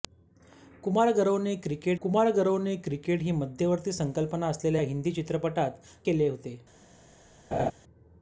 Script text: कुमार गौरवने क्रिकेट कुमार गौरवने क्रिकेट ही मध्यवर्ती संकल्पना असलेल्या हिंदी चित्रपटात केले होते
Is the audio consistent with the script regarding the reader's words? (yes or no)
yes